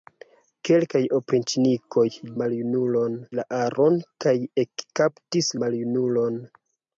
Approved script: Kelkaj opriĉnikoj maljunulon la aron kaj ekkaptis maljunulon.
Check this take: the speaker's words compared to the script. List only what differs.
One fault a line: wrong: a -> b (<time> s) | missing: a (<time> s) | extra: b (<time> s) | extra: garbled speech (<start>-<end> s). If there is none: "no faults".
no faults